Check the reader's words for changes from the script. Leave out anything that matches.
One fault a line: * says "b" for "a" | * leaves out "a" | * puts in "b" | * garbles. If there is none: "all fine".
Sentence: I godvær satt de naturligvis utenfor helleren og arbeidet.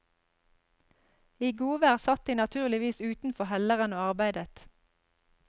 all fine